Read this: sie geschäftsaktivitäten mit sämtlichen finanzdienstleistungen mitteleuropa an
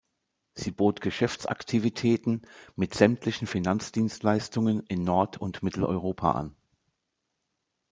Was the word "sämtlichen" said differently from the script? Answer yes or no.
no